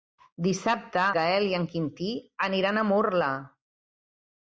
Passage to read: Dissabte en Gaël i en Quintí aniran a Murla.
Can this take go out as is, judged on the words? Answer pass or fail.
fail